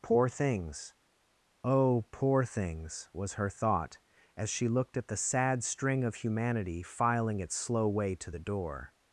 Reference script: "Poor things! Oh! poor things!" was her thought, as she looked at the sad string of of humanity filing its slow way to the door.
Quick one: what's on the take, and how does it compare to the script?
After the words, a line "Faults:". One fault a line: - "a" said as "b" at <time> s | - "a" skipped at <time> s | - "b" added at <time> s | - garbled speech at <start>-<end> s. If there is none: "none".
"Poor things! Oh! poor things!" was her thought, as she looked at the sad string of humanity filing its slow way to the door.
Faults:
- "of" skipped at 6.2 s